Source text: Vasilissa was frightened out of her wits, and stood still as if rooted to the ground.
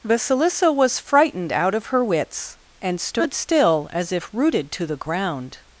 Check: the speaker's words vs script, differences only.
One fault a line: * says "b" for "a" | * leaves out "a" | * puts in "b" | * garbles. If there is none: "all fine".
all fine